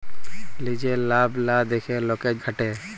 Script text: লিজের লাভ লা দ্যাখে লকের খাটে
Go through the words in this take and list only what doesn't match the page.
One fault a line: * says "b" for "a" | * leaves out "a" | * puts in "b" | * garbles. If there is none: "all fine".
all fine